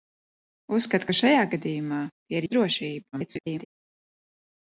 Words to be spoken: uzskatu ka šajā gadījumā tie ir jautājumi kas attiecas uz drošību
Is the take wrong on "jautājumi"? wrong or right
wrong